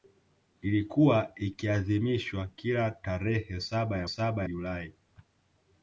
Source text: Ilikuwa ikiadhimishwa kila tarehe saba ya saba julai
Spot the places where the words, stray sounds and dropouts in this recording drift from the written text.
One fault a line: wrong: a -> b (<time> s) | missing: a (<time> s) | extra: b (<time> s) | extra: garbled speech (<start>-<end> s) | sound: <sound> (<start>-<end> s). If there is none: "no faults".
no faults